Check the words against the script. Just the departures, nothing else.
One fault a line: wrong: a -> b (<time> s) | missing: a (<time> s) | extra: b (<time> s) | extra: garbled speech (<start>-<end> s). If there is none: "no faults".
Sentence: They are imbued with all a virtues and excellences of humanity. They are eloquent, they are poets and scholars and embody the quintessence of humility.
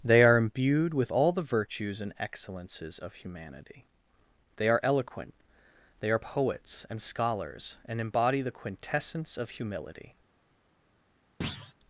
wrong: a -> the (1.3 s)